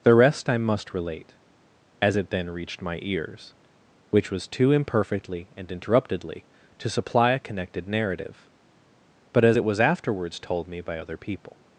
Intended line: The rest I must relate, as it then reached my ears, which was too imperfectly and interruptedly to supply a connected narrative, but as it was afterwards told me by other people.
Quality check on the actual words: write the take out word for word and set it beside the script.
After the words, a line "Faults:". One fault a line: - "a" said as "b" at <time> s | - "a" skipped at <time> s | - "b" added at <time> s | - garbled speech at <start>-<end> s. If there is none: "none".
The rest I must relate, as it then reached my ears, which was too imperfectly and interruptedly to supply a connected narrative, but as it was afterwards told me by other people.
Faults:
none